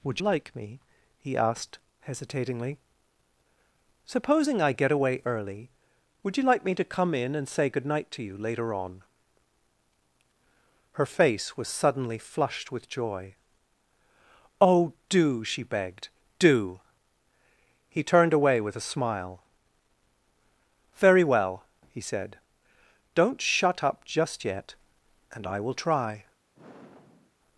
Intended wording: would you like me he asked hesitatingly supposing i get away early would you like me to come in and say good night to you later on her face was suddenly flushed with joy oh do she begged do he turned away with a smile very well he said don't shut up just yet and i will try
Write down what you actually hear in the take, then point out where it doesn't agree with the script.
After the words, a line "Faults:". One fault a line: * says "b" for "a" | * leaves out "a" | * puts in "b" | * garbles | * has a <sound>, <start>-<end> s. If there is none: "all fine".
would like me he asked hesitatingly supposing i get away early would you like me to come in and say good night to you later on her face was suddenly flushed with joy oh do she begged do he turned away with a smile very well he said don't shut up just yet and i will try
Faults:
* leaves out "you"
* has a sigh, 26.5-27.3 s